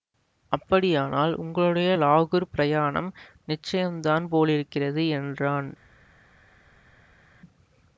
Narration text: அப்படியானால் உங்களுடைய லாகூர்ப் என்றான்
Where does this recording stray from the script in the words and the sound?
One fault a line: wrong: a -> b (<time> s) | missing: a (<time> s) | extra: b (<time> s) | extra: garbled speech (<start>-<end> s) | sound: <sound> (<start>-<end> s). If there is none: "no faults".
extra: பிரயாணம் நிச்சயந்தான் போலிருக்கிறது (2.5 s)